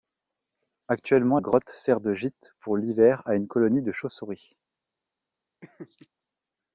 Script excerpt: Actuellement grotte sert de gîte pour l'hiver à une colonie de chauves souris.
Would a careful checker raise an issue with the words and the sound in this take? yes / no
yes